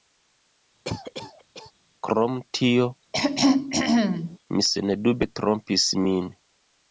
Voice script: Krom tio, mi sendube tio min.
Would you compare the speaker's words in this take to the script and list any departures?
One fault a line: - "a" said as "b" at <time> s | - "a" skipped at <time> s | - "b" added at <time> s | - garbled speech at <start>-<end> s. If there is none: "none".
- "tio" said as "trompis" at 5.4 s